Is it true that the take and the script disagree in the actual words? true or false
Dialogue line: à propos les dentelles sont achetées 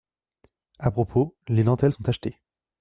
false